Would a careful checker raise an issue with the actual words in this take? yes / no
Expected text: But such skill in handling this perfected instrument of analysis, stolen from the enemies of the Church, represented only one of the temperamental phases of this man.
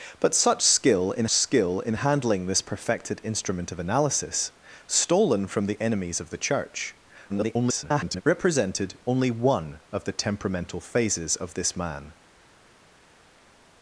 yes